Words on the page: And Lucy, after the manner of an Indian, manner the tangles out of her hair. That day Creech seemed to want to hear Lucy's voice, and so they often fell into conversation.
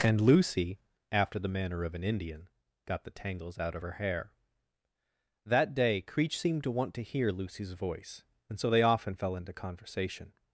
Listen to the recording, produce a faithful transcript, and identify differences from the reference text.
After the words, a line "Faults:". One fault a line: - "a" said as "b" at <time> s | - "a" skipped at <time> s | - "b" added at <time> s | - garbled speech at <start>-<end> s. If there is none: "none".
And Lucy, after the manner of an Indian, got the tangles out of her hair. That day Creech seemed to want to hear Lucy's voice, and so they often fell into conversation.
Faults:
- "manner" said as "got" at 2.9 s